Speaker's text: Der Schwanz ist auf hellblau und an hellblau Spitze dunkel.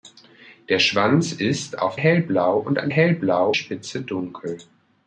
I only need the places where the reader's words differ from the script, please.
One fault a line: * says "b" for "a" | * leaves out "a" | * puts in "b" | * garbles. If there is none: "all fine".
all fine